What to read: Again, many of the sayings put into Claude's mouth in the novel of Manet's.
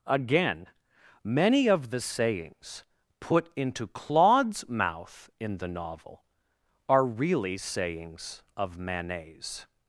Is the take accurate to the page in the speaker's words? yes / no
no